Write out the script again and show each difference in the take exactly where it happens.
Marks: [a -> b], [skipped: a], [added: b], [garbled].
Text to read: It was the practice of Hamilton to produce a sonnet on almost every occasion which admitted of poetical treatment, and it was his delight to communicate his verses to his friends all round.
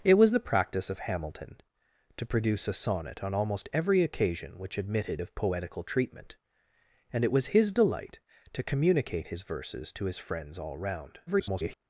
It was the practice of Hamilton to produce a sonnet on almost every occasion which admitted of poetical treatment, and it was his delight to communicate his verses to his friends all round. [garbled]